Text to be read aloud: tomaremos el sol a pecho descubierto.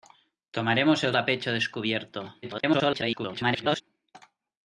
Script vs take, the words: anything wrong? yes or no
yes